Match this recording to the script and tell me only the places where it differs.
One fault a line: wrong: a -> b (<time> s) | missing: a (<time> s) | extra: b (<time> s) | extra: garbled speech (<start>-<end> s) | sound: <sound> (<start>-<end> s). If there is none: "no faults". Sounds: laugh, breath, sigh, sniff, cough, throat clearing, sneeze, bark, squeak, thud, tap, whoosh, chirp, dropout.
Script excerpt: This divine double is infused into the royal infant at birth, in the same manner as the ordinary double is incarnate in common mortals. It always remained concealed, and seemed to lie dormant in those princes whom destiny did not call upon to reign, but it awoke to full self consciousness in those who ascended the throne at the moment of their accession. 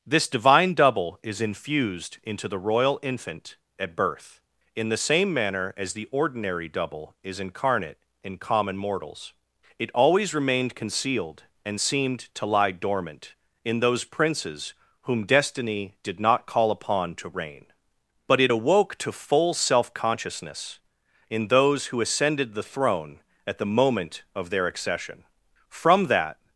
extra: From that (25.7 s)